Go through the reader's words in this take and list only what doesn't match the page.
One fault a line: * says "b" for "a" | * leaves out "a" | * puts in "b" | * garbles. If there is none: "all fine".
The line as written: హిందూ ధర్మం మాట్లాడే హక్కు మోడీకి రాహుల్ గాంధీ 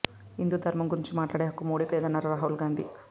* puts in "గురించి"
* puts in "లేదన్నారు"